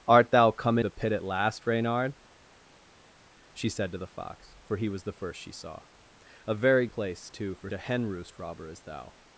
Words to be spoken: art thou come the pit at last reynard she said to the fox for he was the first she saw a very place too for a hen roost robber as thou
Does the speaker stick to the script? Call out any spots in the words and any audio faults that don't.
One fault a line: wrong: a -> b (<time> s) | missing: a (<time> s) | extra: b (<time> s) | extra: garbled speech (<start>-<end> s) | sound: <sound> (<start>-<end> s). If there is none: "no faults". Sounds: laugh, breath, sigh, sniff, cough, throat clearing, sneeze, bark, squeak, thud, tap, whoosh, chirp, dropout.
no faults